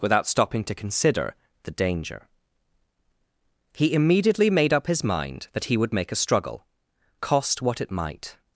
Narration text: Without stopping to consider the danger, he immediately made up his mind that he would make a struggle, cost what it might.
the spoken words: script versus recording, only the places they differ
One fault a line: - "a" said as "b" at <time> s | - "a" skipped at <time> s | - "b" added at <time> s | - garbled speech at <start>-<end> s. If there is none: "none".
none